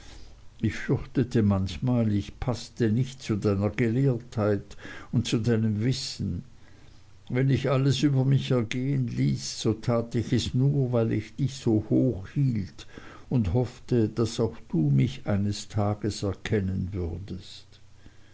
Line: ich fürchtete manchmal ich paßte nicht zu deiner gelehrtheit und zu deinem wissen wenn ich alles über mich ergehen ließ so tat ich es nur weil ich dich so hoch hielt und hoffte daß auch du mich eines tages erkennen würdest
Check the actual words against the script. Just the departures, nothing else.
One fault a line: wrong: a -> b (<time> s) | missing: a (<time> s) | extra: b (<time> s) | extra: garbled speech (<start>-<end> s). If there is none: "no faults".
no faults